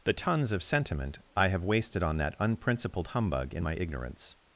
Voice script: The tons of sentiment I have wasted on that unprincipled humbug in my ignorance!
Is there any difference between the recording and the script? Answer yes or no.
no